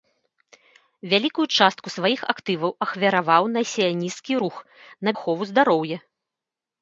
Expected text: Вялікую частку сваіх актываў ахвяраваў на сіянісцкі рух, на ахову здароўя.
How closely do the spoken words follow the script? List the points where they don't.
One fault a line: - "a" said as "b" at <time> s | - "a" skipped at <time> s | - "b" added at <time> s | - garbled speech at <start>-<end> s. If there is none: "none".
none